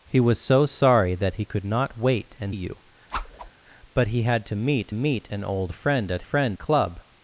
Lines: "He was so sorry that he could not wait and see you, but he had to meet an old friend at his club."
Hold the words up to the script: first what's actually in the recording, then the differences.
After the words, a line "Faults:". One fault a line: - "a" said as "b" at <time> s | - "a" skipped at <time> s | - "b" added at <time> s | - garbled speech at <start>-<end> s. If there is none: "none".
"He was so sorry that he could not wait and you, but he had to meet meet an old friend at friend club."
Faults:
- "see" skipped at 2.5 s
- "meet" added at 4.9 s
- "his" said as "friend" at 6.2 s